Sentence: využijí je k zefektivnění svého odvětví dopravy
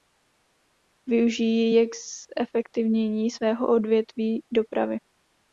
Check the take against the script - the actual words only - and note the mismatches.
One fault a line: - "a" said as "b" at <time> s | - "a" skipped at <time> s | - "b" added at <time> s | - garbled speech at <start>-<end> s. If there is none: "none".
none